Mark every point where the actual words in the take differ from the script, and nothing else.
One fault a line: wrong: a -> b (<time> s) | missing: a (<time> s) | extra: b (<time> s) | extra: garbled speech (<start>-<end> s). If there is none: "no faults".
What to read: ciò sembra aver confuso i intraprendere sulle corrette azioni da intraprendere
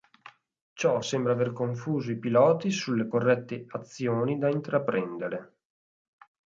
wrong: intraprendere -> piloti (2.2 s)